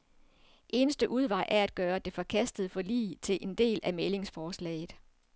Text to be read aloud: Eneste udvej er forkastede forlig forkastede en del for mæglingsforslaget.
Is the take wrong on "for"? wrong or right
wrong